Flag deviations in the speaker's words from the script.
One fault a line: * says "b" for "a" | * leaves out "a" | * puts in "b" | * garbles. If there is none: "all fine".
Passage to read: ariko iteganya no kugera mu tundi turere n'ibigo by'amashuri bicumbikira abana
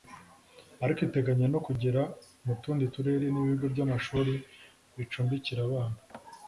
all fine